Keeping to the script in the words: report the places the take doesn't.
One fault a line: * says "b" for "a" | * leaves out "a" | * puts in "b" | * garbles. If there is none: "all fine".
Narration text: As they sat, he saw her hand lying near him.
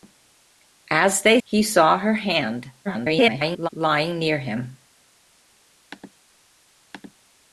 * leaves out "sat"
* garbles